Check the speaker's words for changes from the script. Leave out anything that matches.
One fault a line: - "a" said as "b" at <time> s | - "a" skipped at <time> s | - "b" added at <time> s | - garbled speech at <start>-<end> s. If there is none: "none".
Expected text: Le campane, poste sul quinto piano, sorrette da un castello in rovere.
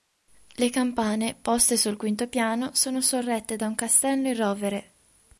- "sono" added at 2.7 s